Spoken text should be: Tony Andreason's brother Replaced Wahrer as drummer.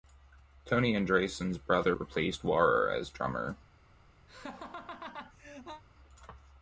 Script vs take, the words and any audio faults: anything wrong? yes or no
yes